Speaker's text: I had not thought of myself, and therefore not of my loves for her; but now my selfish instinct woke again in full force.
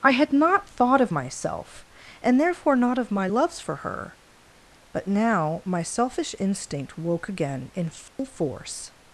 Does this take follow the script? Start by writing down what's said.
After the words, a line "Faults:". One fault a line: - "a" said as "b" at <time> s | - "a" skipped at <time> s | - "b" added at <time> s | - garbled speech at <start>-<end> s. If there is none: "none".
I had not thought of myself, and therefore not of my loves for her; but now my selfish instinct woke again in full force.
Faults:
none